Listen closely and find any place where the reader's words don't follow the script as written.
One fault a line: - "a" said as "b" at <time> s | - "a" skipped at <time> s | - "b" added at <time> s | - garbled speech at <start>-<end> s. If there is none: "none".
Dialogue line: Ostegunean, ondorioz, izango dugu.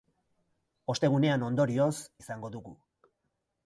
none